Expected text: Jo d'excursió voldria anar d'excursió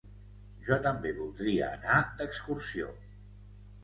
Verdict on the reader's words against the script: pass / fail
fail